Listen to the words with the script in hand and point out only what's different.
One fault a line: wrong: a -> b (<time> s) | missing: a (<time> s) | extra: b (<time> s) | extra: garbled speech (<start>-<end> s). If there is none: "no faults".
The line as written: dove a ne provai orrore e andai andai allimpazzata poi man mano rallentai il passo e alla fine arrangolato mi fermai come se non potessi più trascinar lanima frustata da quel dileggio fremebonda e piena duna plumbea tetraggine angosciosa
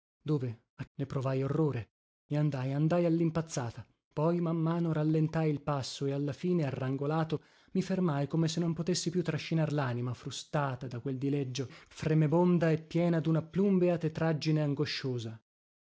no faults